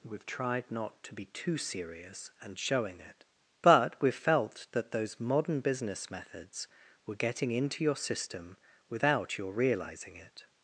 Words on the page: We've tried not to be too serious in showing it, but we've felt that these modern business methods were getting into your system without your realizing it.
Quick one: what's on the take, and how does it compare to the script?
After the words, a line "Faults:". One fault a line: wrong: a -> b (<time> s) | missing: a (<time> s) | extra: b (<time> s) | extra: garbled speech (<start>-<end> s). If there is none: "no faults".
We've tried not to be too serious and showing it, but we've felt that those modern business methods were getting into your system without your realizing it.
Faults:
wrong: in -> and (2.4 s)
wrong: these -> those (4.9 s)